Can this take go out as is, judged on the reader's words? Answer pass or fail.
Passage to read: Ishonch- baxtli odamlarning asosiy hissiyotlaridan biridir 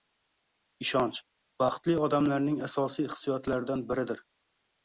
pass